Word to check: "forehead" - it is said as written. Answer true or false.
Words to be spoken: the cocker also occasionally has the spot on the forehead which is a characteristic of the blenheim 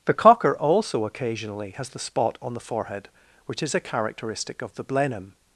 true